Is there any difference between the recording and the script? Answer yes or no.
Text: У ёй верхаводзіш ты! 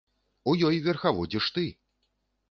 no